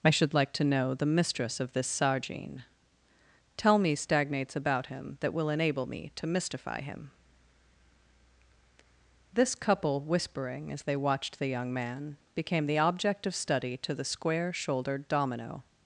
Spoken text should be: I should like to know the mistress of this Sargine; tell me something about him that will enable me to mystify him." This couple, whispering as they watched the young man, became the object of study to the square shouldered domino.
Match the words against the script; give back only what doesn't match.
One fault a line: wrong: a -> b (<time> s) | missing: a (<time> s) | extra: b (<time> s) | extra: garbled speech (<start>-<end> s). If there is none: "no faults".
wrong: something -> stagnates (3.9 s)